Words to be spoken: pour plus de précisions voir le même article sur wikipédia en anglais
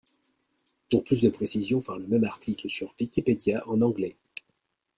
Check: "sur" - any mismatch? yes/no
no